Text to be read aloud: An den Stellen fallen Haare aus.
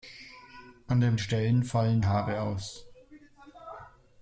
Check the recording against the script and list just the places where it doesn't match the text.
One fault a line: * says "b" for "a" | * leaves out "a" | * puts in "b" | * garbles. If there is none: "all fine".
all fine